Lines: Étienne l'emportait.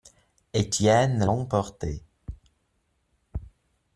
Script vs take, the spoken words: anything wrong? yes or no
no